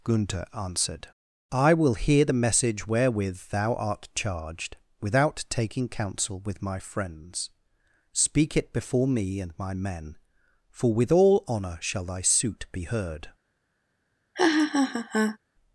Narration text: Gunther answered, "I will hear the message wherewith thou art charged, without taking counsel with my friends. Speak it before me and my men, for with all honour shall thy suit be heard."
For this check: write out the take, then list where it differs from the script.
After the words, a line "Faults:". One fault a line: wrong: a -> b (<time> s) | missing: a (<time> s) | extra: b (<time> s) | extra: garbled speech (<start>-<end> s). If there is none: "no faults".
Gunther answered, "I will hear the message wherewith thou art charged, without taking counsel with my friends. Speak it before me and my men, for with all honour shall thy suit be heard."
Faults:
no faults